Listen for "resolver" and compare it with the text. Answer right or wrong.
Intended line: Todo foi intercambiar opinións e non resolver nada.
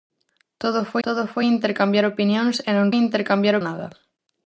wrong